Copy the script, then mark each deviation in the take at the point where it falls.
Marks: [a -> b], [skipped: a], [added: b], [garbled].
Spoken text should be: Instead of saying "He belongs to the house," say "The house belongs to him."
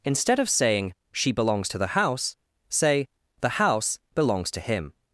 Instead of saying ["He -> She] belongs to the house," say "The house belongs to him."